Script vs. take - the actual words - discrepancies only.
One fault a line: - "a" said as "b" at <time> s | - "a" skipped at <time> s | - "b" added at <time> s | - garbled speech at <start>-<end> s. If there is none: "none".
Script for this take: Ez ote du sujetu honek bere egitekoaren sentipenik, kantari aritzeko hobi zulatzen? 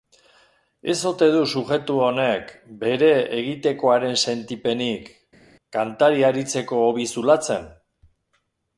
none